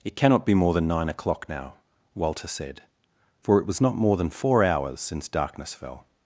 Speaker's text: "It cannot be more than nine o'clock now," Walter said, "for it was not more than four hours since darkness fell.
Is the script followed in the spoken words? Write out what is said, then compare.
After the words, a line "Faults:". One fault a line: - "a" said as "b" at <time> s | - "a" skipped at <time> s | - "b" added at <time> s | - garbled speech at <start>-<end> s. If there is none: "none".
"It cannot be more than nine o'clock now," Walter said, "for it was not more than four hours since darkness fell.
Faults:
none